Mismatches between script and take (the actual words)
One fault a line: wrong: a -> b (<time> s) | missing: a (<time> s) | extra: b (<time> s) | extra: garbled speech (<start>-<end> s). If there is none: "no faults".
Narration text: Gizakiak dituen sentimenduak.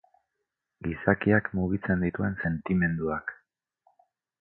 extra: mugitzen (1.6 s)